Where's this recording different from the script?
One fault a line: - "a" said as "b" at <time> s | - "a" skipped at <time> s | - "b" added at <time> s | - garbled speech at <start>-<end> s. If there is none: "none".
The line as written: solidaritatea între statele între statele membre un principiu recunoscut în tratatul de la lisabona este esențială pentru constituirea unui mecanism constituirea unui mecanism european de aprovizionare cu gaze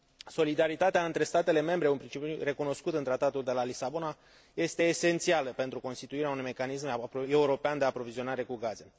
- "între statele" skipped at 1.6 s
- "constituirea unui mecanism" skipped at 7.1 s